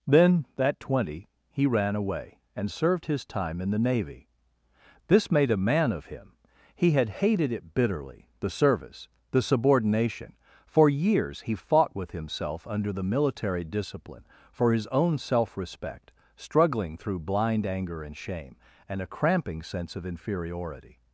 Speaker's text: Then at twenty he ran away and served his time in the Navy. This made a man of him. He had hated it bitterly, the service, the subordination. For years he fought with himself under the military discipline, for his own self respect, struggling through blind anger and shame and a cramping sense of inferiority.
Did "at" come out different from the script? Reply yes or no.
yes